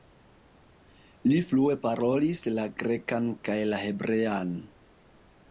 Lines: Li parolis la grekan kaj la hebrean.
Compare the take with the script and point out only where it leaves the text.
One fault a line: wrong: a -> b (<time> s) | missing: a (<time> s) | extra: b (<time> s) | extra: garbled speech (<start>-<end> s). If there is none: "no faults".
extra: flue (1.5 s)